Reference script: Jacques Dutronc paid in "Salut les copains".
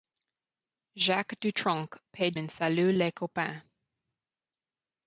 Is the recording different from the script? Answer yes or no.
no